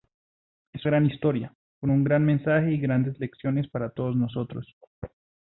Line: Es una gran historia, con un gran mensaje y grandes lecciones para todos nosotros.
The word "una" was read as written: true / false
false